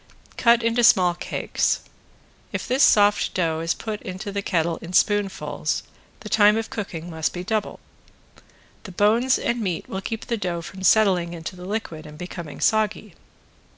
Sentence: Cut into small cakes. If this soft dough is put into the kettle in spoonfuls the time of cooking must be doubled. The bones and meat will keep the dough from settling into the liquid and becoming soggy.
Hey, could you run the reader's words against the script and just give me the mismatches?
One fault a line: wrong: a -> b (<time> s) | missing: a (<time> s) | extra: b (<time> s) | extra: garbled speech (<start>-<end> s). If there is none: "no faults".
no faults